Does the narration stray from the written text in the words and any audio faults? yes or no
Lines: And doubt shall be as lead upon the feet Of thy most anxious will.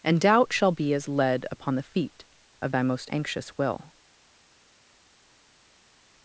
no